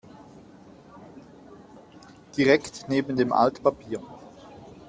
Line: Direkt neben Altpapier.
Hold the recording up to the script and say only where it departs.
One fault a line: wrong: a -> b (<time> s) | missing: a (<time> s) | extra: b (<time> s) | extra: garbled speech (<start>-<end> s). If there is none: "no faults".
extra: dem (3.2 s)